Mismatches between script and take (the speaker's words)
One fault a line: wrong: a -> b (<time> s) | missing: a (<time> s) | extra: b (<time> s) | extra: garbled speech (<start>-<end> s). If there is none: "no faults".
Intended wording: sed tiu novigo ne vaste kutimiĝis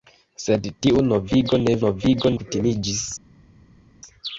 wrong: vaste -> novigo (1.8 s)